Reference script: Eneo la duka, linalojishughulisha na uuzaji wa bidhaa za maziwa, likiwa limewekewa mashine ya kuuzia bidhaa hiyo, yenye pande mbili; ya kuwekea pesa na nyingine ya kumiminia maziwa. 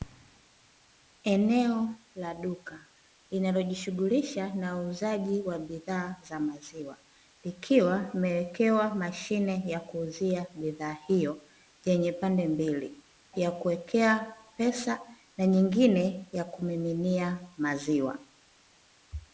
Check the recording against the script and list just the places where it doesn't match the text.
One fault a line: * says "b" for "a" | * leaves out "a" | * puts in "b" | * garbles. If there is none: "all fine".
all fine